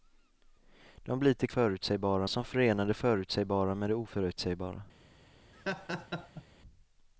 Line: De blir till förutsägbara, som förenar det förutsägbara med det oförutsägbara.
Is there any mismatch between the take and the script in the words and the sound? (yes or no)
yes